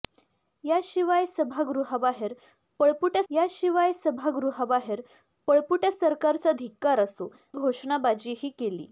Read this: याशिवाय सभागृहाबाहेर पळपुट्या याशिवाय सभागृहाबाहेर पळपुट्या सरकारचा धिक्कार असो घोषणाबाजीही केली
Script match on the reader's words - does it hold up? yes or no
yes